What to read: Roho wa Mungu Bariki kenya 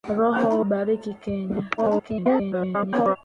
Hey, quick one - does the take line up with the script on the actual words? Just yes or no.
no